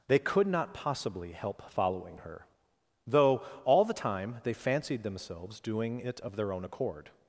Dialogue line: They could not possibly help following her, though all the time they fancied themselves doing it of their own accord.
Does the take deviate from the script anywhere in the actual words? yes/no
no